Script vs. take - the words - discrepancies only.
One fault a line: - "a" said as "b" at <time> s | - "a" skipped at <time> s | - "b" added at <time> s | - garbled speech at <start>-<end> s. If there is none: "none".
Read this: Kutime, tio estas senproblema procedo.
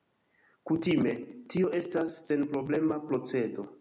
none